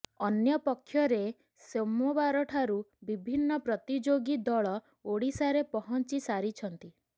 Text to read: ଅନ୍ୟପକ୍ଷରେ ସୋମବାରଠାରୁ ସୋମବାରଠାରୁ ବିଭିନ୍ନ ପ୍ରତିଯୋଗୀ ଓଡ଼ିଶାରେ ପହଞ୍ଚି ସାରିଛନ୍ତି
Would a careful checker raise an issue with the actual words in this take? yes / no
yes